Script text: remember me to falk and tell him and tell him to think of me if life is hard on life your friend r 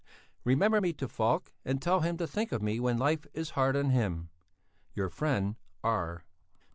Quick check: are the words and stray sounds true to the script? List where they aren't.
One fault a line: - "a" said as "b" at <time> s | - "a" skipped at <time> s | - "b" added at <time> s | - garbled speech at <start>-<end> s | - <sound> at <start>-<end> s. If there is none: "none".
- "and tell him" skipped at 2.2 s
- "if" said as "when" at 2.8 s
- "life" said as "him" at 3.9 s